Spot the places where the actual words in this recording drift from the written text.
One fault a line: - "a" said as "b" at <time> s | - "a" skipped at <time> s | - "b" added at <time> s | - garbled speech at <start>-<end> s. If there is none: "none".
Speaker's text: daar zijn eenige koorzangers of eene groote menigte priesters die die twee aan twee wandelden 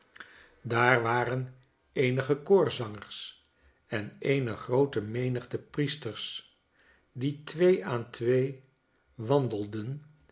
- "zijn" said as "waren" at 1.0 s
- "of" said as "en" at 3.9 s
- "die" skipped at 7.4 s